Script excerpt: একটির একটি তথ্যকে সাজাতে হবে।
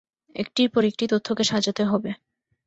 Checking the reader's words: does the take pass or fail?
fail